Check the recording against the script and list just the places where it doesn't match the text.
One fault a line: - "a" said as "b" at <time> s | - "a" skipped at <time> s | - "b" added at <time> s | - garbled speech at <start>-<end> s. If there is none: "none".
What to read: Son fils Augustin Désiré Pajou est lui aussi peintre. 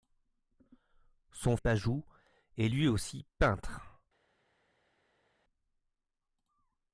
- "fils Augustin Désiré" skipped at 1.6 s